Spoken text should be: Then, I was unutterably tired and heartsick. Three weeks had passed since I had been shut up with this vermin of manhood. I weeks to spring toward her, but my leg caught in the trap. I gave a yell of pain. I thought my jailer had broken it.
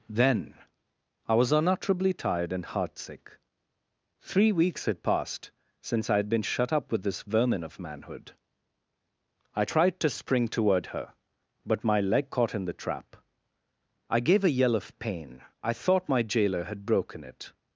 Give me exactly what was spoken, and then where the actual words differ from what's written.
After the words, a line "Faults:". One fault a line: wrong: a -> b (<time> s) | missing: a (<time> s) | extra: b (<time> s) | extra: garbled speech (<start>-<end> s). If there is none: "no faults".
Then, I was unutterably tired and heartsick. Three weeks had passed since I had been shut up with this vermin of manhood. I tried to spring toward her, but my leg caught in the trap. I gave a yell of pain. I thought my jailer had broken it.
Faults:
wrong: weeks -> tried (9.6 s)